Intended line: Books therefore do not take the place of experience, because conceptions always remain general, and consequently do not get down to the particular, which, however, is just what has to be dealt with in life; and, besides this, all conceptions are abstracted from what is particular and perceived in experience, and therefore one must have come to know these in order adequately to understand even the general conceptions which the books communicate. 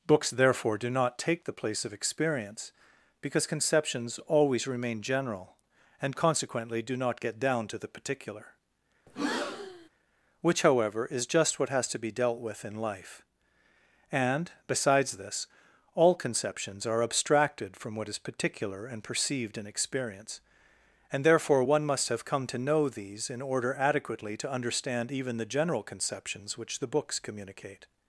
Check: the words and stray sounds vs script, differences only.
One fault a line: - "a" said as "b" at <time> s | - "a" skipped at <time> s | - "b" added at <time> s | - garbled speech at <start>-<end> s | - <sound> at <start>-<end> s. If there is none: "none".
- breath at 9.1-9.9 s